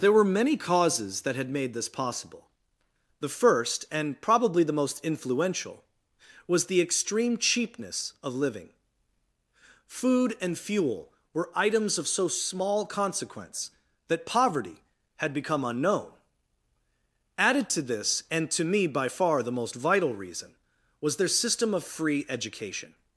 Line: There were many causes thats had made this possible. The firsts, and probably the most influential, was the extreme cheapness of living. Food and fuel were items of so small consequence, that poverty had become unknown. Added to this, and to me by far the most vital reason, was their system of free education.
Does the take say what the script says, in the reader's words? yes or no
no